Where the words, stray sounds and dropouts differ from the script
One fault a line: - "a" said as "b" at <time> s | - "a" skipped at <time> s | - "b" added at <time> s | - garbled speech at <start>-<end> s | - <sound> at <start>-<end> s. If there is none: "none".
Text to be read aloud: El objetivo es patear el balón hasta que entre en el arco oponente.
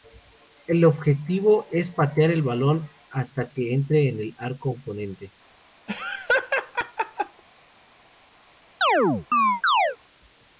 - laugh at 5.9-7.4 s
- chirp at 8.8-10.0 s